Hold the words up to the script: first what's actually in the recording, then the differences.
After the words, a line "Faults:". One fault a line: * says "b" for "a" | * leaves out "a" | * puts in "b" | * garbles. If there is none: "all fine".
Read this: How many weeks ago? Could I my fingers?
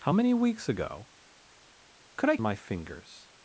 How many weeks ago? Could I my fingers?
Faults:
all fine